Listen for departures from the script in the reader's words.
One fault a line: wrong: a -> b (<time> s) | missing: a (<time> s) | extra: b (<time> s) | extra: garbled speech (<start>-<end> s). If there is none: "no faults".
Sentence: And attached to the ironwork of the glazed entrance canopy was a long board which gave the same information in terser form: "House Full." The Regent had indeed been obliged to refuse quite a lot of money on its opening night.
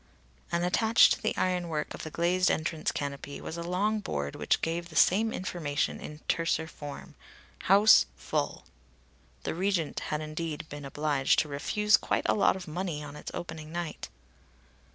no faults